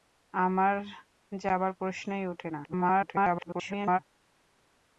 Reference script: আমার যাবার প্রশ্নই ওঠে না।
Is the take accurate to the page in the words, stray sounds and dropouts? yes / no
no